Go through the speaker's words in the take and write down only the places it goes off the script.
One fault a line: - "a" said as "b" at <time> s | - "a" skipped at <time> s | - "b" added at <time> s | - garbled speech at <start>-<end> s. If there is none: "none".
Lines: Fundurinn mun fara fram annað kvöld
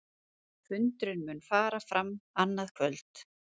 none